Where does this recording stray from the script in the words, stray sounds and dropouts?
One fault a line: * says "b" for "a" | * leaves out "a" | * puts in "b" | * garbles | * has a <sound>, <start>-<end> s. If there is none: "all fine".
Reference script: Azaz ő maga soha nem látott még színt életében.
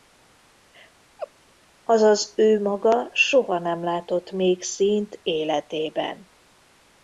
* has a laugh, 1.2-1.3 s